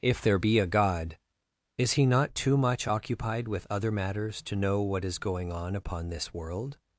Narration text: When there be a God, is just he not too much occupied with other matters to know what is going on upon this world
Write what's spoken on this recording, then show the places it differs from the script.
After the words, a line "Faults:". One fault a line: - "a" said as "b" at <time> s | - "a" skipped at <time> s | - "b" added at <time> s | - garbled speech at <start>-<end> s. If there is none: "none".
If there be a God, is he not too much occupied with other matters to know what is going on upon this world
Faults:
- "When" said as "If" at 0.0 s
- "just" skipped at 1.9 s